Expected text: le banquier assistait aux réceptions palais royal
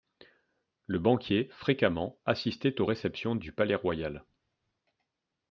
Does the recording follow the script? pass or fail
fail